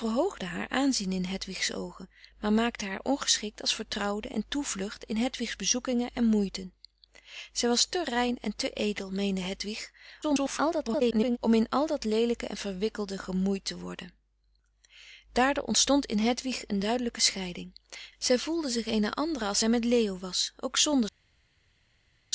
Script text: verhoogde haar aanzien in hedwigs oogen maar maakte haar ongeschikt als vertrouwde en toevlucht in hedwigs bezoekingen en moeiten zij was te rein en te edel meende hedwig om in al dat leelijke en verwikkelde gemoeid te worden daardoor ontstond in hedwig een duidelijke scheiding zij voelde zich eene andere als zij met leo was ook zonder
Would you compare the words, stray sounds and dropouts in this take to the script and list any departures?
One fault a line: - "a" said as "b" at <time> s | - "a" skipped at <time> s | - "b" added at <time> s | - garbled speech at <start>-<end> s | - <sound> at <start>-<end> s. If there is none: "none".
- garbled speech at 10.2-11.4 s